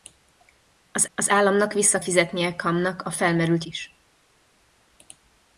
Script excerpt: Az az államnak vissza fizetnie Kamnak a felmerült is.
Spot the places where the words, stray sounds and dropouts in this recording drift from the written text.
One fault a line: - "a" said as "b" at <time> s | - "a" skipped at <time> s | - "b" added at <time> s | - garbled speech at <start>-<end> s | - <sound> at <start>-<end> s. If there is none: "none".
none